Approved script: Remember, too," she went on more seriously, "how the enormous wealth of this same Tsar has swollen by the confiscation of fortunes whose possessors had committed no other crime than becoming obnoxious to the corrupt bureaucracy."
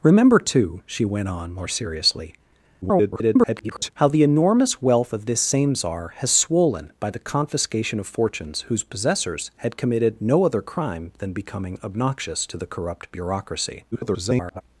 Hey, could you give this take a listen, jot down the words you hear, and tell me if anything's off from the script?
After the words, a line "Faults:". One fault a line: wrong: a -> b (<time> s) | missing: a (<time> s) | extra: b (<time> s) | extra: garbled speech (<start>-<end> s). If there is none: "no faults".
Remember, too," she went on more seriously, [garbled] "how the enormous wealth of this same Tsar has swollen by the confiscation of fortunes whose possessors had committed no other crime than becoming obnoxious to the corrupt bureaucracy." [garbled]
Faults:
extra: garbled speech (2.8-3.9 s)
extra: garbled speech (13.9-14.6 s)